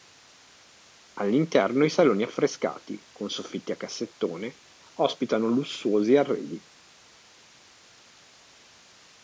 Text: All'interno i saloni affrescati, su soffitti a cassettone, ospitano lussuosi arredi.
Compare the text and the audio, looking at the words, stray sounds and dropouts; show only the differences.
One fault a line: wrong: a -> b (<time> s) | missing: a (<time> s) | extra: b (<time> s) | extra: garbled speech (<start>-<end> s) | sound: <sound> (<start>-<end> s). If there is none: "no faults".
wrong: su -> con (3.1 s)